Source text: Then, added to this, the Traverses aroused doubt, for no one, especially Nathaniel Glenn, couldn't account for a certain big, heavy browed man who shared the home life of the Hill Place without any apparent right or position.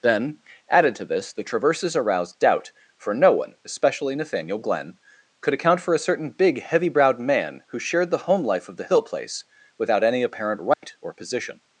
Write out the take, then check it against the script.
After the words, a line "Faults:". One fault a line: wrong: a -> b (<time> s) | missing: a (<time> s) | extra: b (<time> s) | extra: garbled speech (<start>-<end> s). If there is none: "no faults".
Then, added to this, the Traverses aroused doubt, for no one, especially Nathaniel Glenn, could account for a certain big, heavy browed man who shared the home life of the Hill Place without any apparent right or position.
Faults:
wrong: couldn't -> could (5.4 s)